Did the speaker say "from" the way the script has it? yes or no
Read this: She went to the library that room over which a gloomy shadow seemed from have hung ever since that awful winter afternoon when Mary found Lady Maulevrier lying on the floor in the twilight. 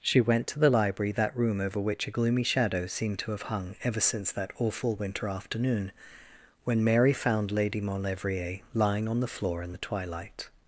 no